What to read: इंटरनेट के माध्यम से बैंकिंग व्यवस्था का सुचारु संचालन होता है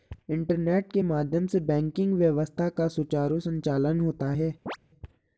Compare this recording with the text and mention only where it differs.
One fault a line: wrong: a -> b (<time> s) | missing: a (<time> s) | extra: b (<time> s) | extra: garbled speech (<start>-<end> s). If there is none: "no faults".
no faults